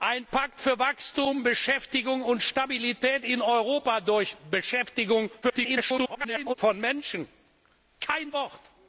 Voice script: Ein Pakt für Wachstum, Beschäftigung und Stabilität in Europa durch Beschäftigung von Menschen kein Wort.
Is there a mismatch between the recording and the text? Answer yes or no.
yes